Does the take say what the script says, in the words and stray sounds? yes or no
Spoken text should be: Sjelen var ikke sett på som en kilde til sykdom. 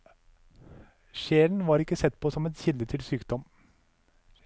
yes